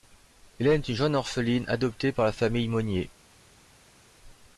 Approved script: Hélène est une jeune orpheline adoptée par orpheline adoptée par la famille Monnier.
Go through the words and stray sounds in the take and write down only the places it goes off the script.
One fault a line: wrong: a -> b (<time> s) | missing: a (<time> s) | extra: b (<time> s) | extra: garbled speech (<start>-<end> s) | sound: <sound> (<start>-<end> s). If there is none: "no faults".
missing: orpheline adoptée par (2.2 s)